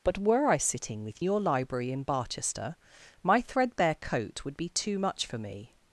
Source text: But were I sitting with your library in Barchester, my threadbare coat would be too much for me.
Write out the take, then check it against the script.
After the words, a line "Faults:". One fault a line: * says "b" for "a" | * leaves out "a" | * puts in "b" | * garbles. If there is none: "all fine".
But were I sitting with your library in Barchester, my threadbare coat would be too much for me.
Faults:
all fine